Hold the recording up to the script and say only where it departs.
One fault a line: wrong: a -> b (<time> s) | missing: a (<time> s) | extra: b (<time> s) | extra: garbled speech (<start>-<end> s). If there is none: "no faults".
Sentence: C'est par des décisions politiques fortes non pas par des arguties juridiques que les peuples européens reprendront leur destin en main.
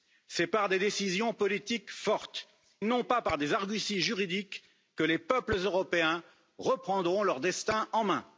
no faults